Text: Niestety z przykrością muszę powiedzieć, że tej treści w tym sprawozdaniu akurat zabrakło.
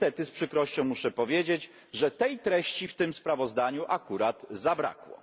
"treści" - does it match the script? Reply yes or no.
yes